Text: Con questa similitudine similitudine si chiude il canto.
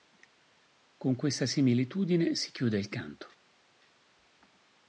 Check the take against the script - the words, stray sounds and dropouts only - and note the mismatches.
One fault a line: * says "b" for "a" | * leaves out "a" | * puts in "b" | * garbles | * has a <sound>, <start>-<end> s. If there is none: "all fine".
* leaves out "similitudine"